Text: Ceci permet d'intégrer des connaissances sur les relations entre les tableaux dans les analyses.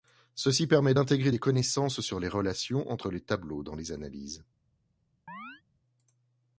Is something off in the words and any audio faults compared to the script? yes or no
yes